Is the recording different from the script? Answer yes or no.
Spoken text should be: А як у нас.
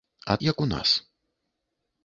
no